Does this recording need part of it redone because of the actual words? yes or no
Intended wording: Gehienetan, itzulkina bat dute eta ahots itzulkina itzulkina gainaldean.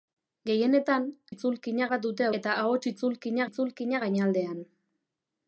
no